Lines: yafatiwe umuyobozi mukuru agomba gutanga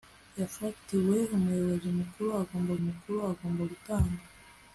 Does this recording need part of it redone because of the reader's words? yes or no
yes